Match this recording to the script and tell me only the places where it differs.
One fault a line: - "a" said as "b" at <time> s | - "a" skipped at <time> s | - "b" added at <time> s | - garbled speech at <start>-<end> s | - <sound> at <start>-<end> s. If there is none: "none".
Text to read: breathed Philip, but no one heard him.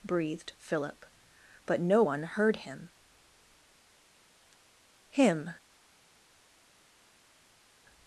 - "him" added at 5.1 s